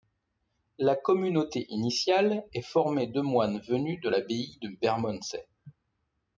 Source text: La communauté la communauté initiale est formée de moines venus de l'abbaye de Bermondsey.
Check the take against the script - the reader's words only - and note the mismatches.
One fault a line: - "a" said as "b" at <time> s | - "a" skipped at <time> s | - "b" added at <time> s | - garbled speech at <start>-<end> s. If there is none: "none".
- "la communauté" skipped at 1.7 s